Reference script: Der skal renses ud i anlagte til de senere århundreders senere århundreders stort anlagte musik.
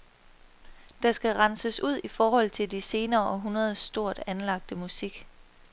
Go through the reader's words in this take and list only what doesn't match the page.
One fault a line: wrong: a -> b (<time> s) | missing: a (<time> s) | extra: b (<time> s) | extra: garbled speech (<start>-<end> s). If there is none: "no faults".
wrong: anlagte -> forhold (2.1 s)
missing: senere århundreders (3.8 s)